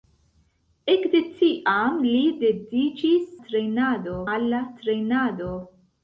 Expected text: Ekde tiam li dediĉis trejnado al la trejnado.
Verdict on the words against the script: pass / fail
pass